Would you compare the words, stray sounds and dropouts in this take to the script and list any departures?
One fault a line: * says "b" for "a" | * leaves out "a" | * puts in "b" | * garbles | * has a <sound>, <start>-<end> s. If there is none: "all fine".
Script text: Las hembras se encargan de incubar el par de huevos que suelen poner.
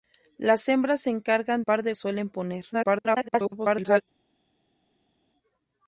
* leaves out "de incubar el"
* leaves out "huevos que"
* garbles